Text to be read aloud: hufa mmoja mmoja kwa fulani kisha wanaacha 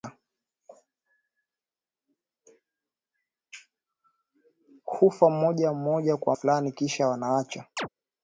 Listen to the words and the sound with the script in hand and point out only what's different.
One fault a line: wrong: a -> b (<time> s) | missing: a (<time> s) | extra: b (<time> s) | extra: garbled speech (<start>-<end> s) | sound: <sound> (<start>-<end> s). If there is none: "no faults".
sound: chirp (7.8-7.9 s)